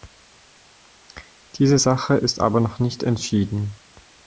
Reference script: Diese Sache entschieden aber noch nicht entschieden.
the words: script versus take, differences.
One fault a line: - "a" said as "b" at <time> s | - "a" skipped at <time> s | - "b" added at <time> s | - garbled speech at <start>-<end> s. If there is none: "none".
- "entschieden" said as "ist" at 2.2 s